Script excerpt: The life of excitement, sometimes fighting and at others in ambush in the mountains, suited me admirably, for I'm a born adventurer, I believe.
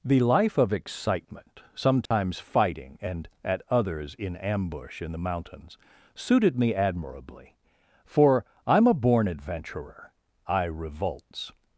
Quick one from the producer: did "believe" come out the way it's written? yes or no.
no